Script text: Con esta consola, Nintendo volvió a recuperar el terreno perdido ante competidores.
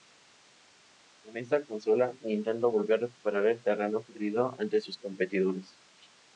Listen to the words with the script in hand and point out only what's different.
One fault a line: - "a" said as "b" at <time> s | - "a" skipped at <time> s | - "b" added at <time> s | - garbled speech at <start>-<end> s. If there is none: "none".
- "sus" added at 4.8 s